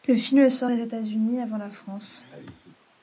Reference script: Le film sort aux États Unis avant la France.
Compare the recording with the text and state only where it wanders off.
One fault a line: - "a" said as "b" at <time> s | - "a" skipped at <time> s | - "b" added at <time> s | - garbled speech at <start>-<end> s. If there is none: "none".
none